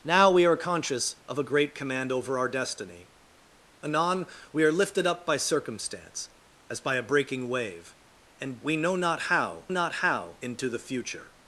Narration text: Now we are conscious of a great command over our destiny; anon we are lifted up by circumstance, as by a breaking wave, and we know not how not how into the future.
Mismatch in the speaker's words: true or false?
false